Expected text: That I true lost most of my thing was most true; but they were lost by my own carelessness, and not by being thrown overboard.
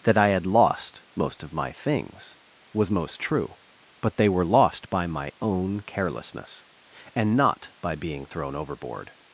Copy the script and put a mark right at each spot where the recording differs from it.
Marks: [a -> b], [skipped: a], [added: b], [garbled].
That I [true -> had] lost most of my [thing -> things] was most true; but they were lost by my own carelessness, and not by being thrown overboard.